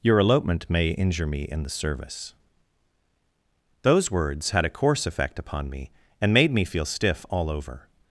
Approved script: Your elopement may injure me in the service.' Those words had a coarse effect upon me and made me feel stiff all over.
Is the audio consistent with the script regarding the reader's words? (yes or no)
yes